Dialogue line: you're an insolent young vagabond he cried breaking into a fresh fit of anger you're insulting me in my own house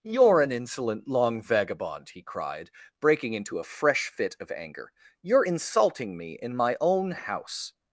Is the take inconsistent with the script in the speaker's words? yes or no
yes